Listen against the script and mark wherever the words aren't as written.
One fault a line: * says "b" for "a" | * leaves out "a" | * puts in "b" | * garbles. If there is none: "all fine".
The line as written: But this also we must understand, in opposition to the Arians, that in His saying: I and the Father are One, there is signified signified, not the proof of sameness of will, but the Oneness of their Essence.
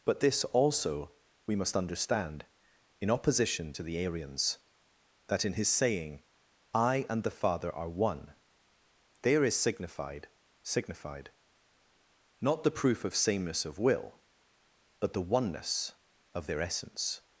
all fine